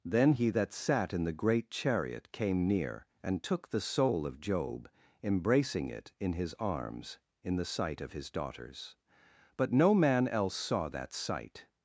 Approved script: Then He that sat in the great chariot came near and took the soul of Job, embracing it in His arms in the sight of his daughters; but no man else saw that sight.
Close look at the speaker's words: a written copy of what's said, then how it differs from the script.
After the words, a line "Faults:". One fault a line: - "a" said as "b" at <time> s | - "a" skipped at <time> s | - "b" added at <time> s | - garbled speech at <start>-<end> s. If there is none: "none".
Then He that sat in the great chariot came near and took the soul of Job, embracing it in His arms in the sight of his daughters; but no man else saw that sight.
Faults:
none